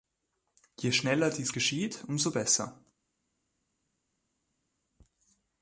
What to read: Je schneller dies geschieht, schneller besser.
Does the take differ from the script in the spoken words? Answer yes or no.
yes